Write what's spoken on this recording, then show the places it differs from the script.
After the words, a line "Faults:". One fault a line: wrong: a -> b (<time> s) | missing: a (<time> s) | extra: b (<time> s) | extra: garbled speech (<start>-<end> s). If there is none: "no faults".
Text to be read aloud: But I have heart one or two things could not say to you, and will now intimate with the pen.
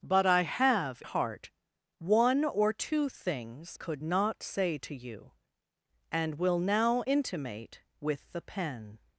But I have heart one or two things could not say to you, and will now intimate with the pen.
Faults:
no faults